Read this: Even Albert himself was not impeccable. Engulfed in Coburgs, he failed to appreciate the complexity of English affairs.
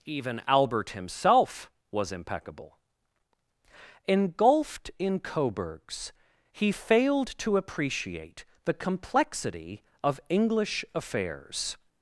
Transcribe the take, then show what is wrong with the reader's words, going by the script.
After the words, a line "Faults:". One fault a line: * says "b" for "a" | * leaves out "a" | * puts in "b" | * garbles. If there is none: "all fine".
Even Albert himself was impeccable. Engulfed in Coburgs, he failed to appreciate the complexity of English affairs.
Faults:
* leaves out "not"